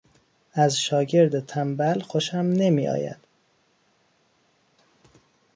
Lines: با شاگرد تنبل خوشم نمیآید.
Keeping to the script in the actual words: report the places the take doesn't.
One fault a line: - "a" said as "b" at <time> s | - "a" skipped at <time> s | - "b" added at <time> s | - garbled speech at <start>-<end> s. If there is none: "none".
- "با" said as "از" at 0.5 s